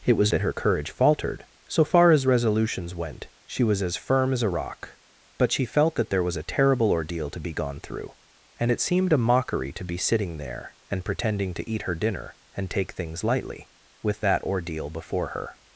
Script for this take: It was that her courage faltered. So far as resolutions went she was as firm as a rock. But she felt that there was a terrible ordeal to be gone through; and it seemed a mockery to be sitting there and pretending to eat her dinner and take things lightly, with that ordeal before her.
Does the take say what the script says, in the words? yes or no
yes